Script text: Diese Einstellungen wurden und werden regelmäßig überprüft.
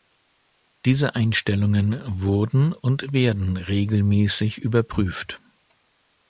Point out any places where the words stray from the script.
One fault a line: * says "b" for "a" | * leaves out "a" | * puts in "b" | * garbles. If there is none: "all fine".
all fine